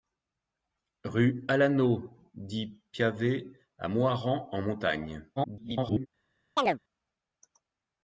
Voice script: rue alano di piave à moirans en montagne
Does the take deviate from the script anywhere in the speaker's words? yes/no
yes